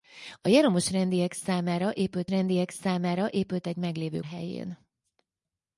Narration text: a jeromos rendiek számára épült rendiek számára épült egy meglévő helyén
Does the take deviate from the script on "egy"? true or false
false